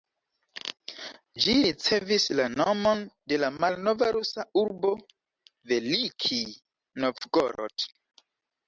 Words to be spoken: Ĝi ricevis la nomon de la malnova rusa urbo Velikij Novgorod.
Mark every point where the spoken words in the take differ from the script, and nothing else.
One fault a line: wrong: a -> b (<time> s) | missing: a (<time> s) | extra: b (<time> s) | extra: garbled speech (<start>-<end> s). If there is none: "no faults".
no faults